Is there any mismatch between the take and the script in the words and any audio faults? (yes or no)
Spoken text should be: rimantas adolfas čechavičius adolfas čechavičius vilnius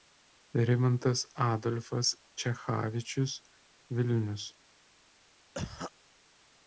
yes